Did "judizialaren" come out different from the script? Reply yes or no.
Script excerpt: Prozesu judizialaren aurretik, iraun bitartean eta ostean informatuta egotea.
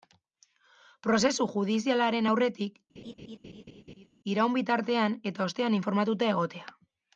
no